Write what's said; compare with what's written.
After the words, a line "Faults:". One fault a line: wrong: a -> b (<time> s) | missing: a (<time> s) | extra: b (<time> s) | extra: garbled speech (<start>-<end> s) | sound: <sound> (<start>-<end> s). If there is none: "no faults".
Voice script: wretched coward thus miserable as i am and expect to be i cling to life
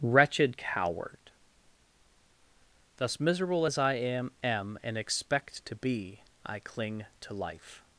wretched coward thus miserable as i am am and expect to be i cling to life
Faults:
extra: am (4.4 s)